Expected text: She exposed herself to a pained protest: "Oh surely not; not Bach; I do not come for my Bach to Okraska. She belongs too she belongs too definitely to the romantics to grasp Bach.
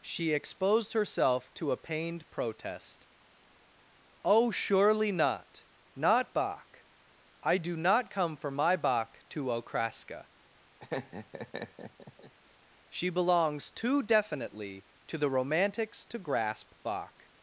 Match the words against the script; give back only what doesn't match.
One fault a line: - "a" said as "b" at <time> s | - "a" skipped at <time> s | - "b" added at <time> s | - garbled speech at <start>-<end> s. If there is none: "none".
- "she belongs too" skipped at 14.0 s